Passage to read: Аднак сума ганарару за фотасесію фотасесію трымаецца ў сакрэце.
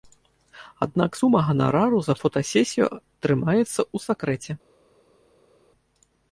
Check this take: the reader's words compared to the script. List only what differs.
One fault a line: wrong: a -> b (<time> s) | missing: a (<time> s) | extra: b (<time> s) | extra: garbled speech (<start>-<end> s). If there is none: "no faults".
missing: фотасесію (2.9 s)